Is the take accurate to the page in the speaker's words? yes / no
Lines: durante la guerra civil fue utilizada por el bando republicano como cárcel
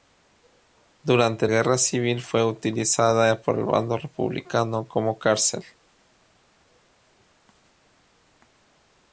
no